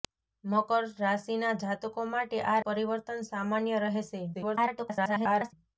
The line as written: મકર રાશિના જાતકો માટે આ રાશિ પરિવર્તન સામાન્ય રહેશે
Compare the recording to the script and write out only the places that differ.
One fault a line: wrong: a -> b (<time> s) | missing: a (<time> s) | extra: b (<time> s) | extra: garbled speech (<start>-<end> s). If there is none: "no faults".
missing: રાશિ (2.6 s)
extra: garbled speech (4.3-5.5 s)